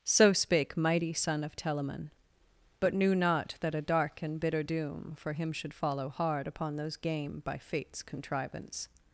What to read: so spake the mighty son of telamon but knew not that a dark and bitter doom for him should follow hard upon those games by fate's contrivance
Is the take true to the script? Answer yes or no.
no